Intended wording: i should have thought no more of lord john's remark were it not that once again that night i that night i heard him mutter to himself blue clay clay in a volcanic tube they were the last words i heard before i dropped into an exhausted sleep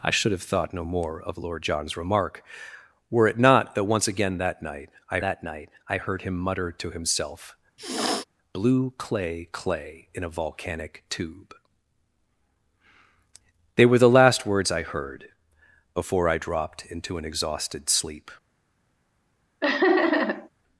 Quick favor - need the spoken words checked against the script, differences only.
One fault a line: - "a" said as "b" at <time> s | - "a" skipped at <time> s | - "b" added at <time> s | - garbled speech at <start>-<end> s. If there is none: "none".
none